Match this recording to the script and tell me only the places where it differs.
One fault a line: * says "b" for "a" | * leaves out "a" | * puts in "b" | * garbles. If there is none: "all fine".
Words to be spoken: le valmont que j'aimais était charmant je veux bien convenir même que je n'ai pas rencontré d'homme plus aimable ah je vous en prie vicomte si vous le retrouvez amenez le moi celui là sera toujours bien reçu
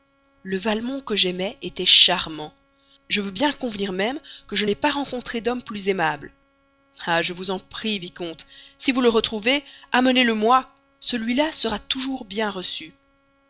all fine